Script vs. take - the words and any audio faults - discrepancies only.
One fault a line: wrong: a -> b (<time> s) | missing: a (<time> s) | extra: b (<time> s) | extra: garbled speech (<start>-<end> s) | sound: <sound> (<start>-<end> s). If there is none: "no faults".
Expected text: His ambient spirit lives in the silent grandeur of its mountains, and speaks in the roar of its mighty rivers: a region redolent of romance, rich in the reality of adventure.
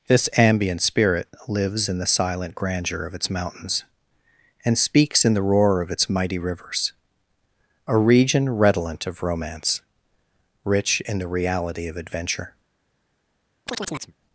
wrong: His -> This (0.1 s)
sound: chirp (13.7-14.1 s)